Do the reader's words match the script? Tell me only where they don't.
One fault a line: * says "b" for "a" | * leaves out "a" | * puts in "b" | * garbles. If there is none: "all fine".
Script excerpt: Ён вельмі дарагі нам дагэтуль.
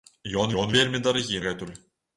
* puts in "ён"
* leaves out "нам"